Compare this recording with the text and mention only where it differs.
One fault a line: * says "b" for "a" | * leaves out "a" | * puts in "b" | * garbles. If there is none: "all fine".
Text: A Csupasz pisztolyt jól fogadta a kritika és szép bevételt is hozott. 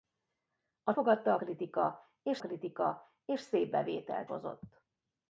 * leaves out "Csupasz pisztolyt jól"
* puts in "kritika és"
* leaves out "is"